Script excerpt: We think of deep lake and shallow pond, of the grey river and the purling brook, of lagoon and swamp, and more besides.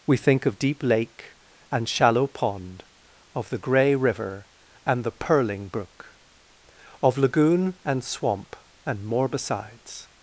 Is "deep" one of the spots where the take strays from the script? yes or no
no